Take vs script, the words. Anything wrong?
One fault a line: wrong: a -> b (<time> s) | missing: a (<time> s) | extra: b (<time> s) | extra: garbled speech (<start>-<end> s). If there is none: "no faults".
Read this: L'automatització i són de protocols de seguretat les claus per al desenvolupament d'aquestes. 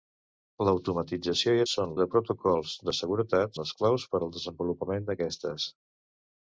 no faults